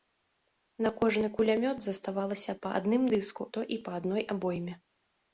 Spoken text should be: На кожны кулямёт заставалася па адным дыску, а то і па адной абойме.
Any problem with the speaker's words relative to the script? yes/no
yes